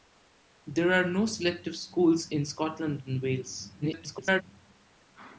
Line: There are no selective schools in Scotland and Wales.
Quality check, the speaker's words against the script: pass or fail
fail